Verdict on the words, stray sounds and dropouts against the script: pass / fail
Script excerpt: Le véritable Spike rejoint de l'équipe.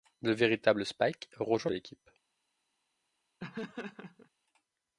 fail